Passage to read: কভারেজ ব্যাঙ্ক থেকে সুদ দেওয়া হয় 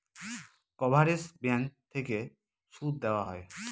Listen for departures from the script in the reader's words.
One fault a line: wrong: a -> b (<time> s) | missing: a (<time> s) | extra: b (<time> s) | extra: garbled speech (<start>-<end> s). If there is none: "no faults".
no faults